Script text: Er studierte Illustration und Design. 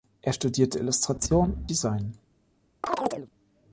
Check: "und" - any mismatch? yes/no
yes